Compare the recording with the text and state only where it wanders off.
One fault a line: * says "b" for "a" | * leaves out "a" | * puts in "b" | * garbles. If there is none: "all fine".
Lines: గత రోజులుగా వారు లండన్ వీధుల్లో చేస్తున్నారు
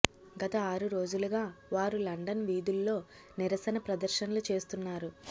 * puts in "ఆరు"
* puts in "నిరసన ప్రదర్శనలు"